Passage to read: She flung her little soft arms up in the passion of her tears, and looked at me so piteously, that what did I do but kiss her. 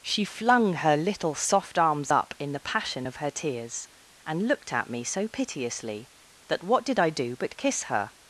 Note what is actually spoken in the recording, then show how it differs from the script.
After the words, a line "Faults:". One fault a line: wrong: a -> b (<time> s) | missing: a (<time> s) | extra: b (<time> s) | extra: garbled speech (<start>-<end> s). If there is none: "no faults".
She flung her little soft arms up in the passion of her tears, and looked at me so piteously, that what did I do but kiss her.
Faults:
no faults